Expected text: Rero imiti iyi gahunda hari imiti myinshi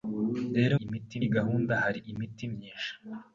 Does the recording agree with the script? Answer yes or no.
yes